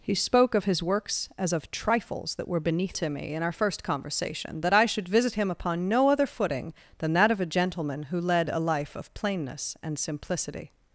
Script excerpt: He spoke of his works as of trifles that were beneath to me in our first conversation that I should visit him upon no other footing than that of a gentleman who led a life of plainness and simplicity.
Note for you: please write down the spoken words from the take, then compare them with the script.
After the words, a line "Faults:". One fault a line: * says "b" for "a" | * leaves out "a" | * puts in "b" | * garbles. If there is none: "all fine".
He spoke of his works as of trifles that were beneath to me in our first conversation that I should visit him upon no other footing than that of a gentleman who led a life of plainness and simplicity.
Faults:
all fine